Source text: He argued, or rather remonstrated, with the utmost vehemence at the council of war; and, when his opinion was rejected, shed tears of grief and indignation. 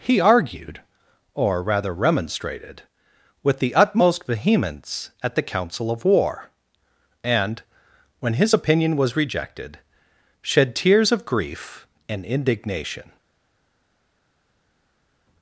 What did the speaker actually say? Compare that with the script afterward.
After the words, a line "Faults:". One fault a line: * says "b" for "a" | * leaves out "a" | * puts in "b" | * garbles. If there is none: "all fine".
He argued, or rather remonstrated, with the utmost vehemence at the council of war; and, when his opinion was rejected, shed tears of grief and indignation.
Faults:
all fine